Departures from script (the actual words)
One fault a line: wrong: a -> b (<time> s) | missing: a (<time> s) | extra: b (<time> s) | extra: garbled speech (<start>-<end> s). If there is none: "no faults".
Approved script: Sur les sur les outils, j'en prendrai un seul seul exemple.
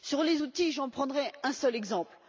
missing: sur les (0.4 s)
missing: seul (1.7 s)